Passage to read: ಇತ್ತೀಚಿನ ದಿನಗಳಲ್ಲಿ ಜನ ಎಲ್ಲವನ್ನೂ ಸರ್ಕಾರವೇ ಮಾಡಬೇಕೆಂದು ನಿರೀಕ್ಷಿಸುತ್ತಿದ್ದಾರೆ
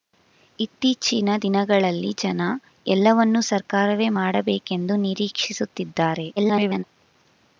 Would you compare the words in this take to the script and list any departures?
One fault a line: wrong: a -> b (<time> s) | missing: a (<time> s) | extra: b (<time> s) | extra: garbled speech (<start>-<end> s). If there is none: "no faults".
extra: garbled speech (6.4-6.8 s)